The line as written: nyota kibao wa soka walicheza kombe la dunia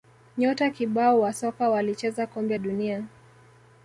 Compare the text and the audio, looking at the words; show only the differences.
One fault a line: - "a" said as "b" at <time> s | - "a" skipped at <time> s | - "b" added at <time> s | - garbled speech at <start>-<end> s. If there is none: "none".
- "la" skipped at 2.6 s